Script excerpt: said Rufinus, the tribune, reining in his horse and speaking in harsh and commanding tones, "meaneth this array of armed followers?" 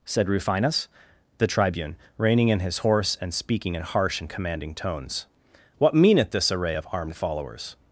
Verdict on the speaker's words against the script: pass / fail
fail